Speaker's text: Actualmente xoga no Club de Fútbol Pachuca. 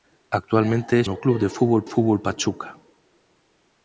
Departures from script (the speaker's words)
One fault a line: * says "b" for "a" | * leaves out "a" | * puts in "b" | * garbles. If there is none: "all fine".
* leaves out "xoga"
* puts in "Fútbol"